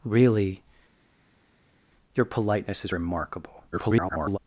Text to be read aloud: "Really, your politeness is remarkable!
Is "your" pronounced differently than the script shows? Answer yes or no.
no